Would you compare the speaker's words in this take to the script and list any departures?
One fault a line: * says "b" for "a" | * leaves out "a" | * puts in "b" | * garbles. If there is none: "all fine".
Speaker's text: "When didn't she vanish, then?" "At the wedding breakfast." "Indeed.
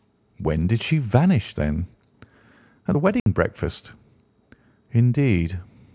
* says "did" for "didn't"